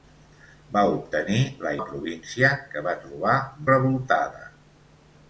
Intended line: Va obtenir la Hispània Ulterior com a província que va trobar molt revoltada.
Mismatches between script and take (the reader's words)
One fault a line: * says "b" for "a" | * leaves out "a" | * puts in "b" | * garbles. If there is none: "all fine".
* leaves out "Hispània Ulterior com"
* leaves out "molt"